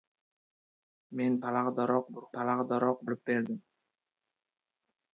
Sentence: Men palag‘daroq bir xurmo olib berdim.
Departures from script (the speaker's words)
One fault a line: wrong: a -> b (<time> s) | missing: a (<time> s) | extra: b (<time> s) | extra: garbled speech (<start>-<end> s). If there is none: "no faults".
wrong: xurmo -> palag‘daroq (2.3 s)